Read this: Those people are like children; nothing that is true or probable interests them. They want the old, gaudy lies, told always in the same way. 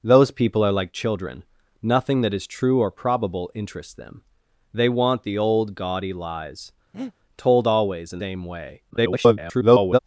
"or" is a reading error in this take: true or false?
false